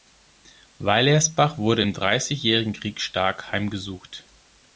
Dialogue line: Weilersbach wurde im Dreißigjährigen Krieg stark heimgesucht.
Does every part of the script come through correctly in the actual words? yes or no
yes